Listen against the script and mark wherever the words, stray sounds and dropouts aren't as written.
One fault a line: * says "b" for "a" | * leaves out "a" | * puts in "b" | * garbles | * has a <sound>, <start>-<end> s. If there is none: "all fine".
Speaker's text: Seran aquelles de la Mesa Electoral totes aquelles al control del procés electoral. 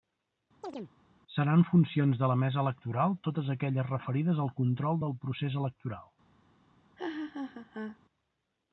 * has a chirp, 0.6-0.9 s
* says "funcions" for "aquelles"
* puts in "referides"
* has a laugh, 7.0-8.0 s